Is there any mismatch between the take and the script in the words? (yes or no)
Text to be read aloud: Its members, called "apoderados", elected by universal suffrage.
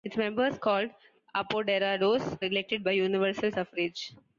no